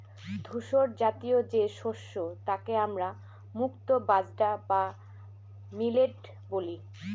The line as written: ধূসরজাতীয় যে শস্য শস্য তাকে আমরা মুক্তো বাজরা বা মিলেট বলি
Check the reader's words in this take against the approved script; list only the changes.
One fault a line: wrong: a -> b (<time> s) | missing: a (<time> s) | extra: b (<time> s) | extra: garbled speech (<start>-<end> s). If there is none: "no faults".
missing: শস্য (2.1 s)